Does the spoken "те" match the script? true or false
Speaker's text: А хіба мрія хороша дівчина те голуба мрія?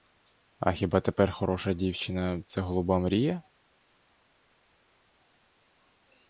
false